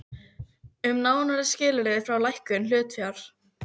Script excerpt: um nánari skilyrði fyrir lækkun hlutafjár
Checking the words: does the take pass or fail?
pass